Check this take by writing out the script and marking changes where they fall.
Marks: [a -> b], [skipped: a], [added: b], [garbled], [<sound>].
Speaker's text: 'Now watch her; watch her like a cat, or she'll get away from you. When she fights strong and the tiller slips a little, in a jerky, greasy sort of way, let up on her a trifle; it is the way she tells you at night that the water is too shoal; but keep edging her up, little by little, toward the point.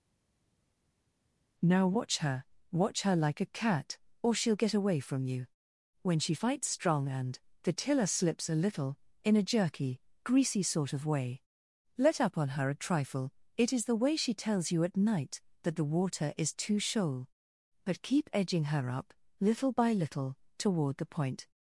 'Now watch her; watch her like a cat, or she'll get away from you. When she fights strong and the tiller slips a little, in a jerky, greasy sort of way, let up on her a trifle; it is the way she tells you at night that the water is too shoal; but keep edging her up, little by little, toward the point.